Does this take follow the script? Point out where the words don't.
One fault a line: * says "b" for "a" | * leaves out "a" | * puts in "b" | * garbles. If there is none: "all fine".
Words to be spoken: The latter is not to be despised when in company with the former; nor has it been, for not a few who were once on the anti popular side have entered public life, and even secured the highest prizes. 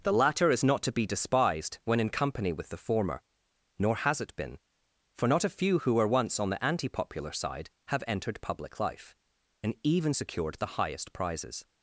all fine